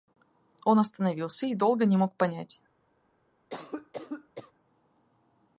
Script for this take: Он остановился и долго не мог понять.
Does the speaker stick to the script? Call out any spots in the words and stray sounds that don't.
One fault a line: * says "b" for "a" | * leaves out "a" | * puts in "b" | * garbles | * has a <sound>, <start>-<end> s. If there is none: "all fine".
* has a cough, 3.5-4.5 s